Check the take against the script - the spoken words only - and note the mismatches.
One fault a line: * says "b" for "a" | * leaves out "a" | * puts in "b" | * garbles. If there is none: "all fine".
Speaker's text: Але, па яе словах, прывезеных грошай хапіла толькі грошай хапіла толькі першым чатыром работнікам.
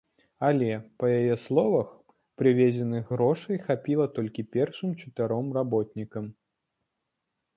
* leaves out "грошай хапіла толькі"